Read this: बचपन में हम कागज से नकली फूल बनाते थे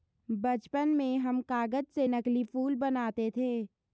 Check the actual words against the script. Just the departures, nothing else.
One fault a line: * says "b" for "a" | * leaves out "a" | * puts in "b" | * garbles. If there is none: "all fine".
all fine